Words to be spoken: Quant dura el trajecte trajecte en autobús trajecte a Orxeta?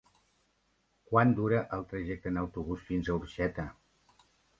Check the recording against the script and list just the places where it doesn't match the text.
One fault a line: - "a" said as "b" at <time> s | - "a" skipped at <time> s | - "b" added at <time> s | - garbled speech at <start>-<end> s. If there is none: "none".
- "trajecte" skipped at 2.3 s
- "trajecte" said as "fins" at 2.9 s